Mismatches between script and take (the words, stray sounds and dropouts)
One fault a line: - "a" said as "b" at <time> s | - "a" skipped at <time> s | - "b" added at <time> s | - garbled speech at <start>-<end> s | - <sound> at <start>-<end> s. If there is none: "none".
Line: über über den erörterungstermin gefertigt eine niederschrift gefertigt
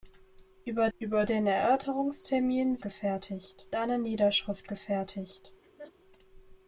- laugh at 5.6-5.9 s